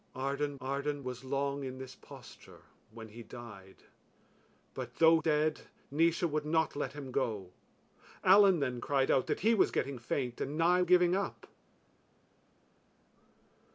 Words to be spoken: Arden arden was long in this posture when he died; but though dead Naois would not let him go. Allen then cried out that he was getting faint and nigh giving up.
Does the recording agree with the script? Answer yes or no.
yes